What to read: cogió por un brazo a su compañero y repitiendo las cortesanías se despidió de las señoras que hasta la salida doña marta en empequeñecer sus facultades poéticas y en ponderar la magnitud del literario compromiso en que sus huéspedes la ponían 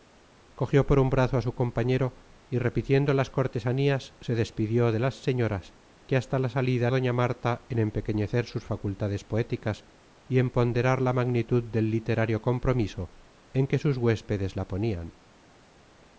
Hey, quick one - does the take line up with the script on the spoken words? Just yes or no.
yes